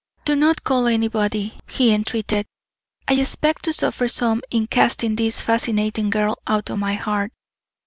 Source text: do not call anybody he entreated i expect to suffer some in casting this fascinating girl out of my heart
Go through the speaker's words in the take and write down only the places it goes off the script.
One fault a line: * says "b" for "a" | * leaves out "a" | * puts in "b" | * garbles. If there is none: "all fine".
all fine